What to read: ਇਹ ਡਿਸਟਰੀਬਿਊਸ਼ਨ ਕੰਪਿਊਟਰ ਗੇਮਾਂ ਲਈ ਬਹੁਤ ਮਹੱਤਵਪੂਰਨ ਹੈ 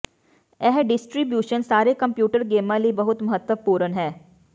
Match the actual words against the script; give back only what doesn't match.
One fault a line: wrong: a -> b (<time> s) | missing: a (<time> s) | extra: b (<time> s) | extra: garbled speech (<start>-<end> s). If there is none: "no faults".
extra: ਸਾਰੇ (1.6 s)